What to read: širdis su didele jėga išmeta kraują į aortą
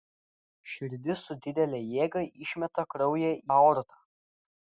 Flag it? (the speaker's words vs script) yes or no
yes